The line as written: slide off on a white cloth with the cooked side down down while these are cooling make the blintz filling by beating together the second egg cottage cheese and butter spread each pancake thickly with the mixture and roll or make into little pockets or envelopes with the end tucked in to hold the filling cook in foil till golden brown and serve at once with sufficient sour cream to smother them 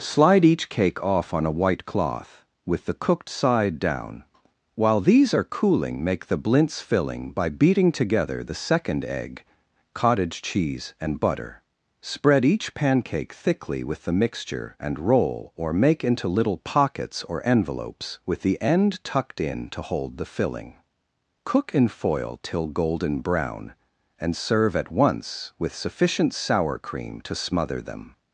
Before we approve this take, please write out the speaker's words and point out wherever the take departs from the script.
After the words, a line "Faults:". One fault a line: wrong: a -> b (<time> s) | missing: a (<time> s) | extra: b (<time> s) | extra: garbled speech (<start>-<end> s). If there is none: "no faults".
slide each cake off on a white cloth with the cooked side down while these are cooling make the blintz filling by beating together the second egg cottage cheese and butter spread each pancake thickly with the mixture and roll or make into little pockets or envelopes with the end tucked in to hold the filling cook in foil till golden brown and serve at once with sufficient sour cream to smother them
Faults:
extra: each cake (0.4 s)
missing: down (4.2 s)